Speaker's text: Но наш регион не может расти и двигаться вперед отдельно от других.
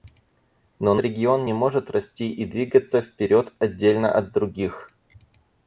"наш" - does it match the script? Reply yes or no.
no